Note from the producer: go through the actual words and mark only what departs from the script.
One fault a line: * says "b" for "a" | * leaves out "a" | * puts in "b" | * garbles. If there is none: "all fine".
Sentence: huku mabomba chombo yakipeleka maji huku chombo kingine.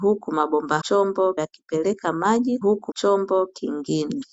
all fine